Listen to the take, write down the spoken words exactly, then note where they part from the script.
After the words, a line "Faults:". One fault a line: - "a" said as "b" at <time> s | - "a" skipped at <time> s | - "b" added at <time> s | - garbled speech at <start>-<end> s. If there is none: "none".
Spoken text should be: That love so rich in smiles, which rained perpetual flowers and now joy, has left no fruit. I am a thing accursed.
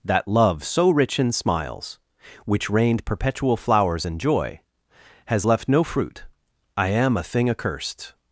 That love so rich in smiles, which rained perpetual flowers and joy, has left no fruit. I am a thing accursed.
Faults:
- "now" skipped at 4.2 s